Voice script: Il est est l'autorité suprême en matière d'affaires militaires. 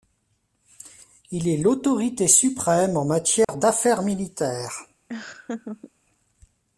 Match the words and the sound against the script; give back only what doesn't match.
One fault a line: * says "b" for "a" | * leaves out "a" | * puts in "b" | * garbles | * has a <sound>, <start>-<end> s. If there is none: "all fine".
* leaves out "est"
* has a dropout, 3.4-3.5 s
* has a laugh, 5.1-5.9 s